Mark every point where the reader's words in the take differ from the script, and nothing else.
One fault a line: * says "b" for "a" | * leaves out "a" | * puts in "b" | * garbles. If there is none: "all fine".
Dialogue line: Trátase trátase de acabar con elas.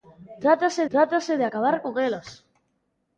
all fine